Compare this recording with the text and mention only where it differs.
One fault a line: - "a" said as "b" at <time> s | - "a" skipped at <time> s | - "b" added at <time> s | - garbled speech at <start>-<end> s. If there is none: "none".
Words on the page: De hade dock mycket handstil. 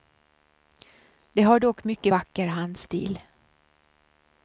- "hade" said as "har" at 1.4 s
- "vacker" added at 2.1 s